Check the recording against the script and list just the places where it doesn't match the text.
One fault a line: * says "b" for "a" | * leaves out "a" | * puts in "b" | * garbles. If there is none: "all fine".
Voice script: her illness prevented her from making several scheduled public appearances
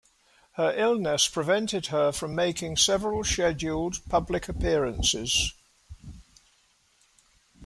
all fine